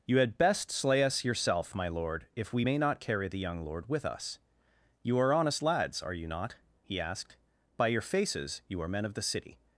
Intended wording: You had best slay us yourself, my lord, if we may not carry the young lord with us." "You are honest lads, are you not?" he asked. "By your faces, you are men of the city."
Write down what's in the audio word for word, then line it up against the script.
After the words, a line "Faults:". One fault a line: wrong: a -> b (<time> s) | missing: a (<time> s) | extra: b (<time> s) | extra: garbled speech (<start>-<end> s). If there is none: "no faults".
You had best slay us yourself, my lord, if we may not carry the young lord with us." "You are honest lads, are you not?" he asked. "By your faces, you are men of the city."
Faults:
no faults